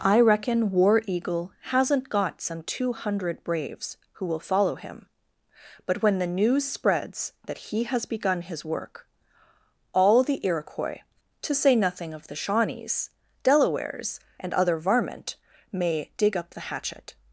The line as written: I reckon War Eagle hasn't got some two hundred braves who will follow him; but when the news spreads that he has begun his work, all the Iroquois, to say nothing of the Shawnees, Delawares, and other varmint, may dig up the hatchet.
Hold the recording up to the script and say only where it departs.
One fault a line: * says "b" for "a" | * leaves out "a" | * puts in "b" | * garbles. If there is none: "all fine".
all fine